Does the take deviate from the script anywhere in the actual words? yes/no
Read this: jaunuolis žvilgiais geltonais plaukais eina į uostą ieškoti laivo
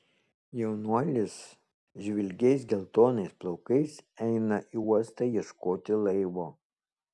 no